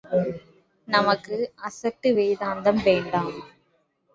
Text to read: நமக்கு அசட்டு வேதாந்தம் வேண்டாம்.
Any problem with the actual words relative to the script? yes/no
no